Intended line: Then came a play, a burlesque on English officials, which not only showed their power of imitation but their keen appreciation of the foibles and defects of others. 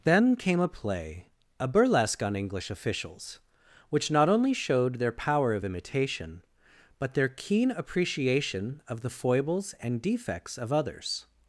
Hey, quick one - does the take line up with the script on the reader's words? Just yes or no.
yes